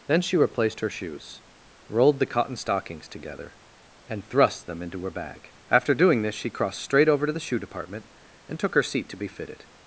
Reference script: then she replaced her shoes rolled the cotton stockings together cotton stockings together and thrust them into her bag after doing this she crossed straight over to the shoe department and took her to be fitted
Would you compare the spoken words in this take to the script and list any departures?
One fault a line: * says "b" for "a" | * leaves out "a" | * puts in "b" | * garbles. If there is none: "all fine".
* leaves out "cotton stockings together"
* puts in "seat"